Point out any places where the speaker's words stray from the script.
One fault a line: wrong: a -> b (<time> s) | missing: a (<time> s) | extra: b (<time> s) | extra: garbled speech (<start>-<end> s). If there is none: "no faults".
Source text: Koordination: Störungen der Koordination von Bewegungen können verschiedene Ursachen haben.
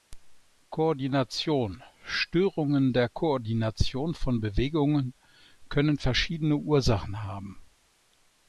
no faults